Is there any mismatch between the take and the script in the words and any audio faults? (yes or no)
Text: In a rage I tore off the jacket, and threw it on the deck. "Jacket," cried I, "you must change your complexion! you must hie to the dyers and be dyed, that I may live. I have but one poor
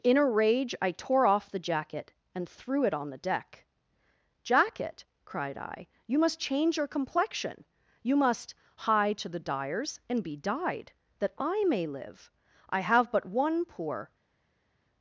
no